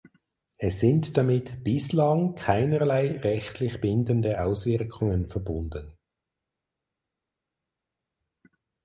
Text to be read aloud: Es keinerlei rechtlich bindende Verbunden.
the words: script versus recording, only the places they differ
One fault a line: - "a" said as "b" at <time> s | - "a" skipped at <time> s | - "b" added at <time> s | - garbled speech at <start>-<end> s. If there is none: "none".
- "sind damit bislang" added at 0.8 s
- "Auswirkungen" added at 4.4 s